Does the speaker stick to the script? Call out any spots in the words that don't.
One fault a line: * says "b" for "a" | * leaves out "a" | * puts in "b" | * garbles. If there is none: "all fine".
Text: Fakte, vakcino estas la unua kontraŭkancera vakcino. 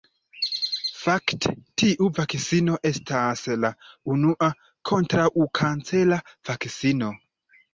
* puts in "tiu"